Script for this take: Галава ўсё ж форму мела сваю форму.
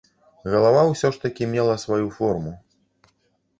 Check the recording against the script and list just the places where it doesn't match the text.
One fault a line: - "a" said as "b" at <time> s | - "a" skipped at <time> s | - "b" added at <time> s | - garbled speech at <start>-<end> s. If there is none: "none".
- "форму" said as "такі" at 1.3 s